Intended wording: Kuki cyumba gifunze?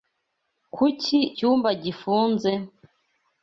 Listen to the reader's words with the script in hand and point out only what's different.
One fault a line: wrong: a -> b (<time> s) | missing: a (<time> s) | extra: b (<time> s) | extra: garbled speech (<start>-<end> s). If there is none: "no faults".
no faults